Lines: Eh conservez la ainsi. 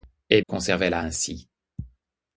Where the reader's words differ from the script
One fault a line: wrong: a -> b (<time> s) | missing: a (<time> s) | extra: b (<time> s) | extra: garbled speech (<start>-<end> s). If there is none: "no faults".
no faults